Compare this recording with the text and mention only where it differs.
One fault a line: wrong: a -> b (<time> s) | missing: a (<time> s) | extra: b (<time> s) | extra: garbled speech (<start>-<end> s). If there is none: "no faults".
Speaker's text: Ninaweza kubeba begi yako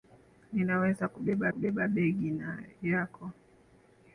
extra: kubeba (1.5 s)